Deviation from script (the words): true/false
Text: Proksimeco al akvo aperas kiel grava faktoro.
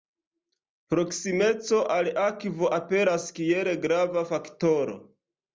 false